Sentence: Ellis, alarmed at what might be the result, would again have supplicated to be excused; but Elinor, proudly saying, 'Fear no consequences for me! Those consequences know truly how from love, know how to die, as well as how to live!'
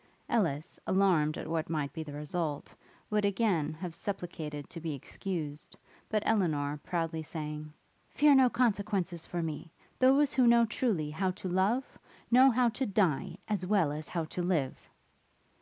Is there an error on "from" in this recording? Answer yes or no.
yes